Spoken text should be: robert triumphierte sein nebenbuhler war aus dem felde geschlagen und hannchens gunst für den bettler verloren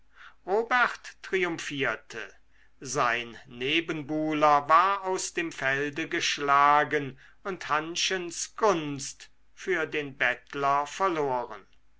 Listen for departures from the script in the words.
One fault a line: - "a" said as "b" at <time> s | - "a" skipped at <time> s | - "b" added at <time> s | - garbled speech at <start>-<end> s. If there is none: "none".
none